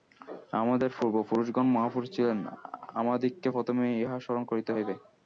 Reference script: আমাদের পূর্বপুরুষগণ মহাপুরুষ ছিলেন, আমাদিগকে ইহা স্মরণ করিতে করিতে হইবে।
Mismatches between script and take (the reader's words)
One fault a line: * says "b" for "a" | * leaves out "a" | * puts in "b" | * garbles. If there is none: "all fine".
* puts in "প্রথমেই"
* leaves out "করিতে"